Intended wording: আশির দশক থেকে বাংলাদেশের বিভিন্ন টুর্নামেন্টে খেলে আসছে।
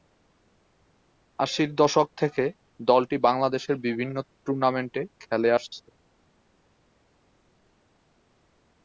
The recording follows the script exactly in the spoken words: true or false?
false